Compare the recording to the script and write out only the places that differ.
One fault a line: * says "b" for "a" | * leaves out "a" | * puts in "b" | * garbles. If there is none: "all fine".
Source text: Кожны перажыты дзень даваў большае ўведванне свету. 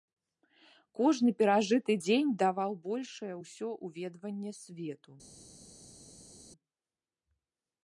* puts in "ўсё"